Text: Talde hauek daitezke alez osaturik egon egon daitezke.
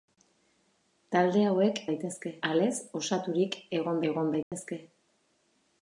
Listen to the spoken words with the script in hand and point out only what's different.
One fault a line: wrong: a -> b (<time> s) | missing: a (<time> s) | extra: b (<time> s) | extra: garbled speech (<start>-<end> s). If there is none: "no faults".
no faults